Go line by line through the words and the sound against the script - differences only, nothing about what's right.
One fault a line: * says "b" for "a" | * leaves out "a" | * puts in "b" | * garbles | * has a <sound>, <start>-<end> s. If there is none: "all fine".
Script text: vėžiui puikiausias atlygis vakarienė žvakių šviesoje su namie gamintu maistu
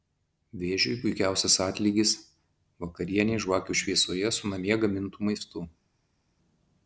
all fine